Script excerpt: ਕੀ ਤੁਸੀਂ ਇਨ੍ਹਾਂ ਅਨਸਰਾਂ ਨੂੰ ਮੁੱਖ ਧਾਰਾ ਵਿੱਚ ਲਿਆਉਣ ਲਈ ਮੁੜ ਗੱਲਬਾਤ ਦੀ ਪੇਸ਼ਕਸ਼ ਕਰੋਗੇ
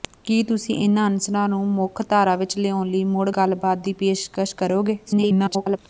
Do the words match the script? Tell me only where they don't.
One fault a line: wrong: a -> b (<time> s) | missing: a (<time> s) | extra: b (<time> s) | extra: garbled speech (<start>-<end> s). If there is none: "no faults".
extra: garbled speech (5.1-5.8 s)